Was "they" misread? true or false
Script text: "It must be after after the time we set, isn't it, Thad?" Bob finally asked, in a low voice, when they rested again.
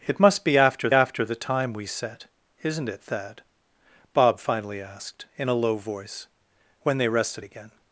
false